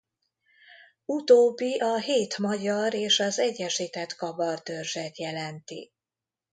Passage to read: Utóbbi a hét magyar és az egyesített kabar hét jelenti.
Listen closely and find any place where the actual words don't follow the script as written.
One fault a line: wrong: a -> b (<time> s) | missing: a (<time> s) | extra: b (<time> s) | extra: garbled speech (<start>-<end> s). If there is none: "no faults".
wrong: hét -> törzset (4.6 s)